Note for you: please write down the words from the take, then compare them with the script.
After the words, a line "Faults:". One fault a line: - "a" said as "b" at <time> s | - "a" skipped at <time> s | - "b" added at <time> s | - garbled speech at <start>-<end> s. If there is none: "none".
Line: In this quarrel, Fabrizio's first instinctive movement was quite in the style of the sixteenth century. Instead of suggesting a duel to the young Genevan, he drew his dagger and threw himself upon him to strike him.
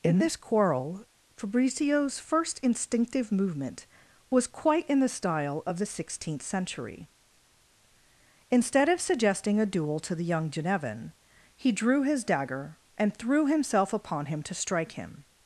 In this quarrel, Fabrizio's first instinctive movement was quite in the style of the sixteenth century. Instead of suggesting a duel to the young Genevan, he drew his dagger and threw himself upon him to strike him.
Faults:
none